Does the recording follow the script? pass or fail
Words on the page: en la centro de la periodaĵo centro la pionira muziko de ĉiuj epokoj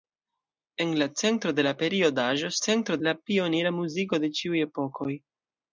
pass